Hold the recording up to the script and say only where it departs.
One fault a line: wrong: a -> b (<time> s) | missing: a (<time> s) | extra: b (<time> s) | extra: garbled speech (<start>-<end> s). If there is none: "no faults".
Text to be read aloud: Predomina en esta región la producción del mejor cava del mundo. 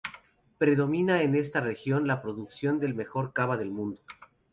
no faults